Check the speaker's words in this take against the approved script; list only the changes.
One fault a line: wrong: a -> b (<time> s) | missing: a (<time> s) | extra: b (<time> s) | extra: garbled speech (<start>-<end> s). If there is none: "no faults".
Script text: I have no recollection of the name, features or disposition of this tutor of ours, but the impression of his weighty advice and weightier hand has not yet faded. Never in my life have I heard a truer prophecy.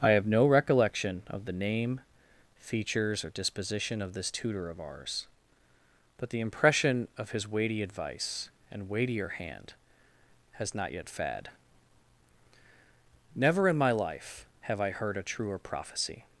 wrong: faded -> fad (11.1 s)